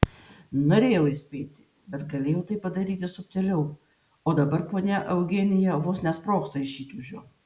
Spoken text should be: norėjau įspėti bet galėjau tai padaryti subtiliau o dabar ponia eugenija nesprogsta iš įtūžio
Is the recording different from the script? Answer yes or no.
yes